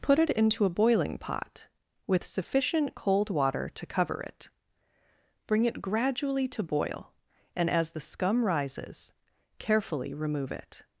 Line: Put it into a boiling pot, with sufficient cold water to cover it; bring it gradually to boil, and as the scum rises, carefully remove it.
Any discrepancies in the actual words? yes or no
no